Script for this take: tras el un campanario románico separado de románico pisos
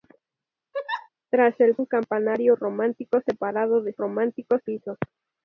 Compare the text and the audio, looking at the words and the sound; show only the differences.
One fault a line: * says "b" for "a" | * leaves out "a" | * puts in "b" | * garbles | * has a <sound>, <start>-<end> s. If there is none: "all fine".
* has a laugh, 0.7-1.1 s